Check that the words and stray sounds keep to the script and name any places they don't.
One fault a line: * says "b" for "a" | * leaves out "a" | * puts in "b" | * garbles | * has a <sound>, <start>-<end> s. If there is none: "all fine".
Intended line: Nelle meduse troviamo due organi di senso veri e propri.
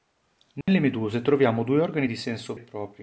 * has a dropout, 0.6-0.7 s
* leaves out "veri"